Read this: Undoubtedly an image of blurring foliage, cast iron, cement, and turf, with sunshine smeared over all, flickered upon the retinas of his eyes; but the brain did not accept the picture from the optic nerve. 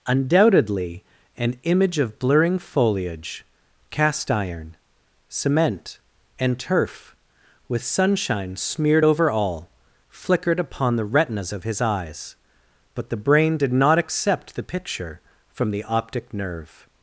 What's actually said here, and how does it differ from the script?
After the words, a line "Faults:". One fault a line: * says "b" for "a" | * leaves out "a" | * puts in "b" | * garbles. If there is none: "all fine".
Undoubtedly an image of blurring foliage, cast iron, cement, and turf, with sunshine smeared over all, flickered upon the retinas of his eyes; but the brain did not accept the picture from the optic nerve.
Faults:
all fine